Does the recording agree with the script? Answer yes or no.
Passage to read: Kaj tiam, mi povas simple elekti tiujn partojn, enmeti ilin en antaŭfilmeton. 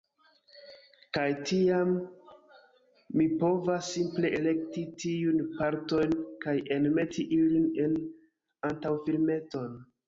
no